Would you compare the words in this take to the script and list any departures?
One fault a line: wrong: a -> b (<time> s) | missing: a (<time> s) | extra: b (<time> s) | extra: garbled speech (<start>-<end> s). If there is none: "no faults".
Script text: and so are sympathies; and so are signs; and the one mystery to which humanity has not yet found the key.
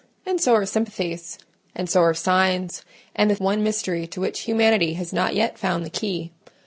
no faults